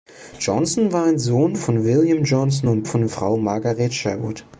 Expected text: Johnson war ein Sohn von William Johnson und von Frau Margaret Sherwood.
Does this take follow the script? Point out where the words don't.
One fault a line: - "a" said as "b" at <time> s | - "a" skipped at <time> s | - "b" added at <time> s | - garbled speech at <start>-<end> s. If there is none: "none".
none